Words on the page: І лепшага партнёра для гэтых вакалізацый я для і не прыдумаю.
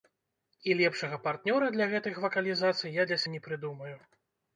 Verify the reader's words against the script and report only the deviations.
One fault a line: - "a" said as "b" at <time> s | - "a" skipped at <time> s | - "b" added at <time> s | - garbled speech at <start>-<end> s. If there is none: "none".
none